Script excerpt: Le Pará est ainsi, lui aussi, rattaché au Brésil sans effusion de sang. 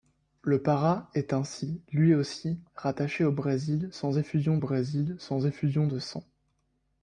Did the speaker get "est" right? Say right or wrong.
right